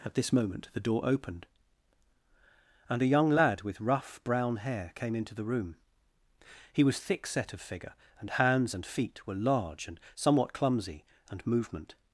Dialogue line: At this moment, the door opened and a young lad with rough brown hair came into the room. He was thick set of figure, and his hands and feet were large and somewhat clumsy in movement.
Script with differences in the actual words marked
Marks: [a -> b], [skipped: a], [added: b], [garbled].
At this moment, the door opened and a young lad with rough brown hair came into the room. He was thick set of figure, and [skipped: his] hands and feet were large and somewhat clumsy [in -> and] movement.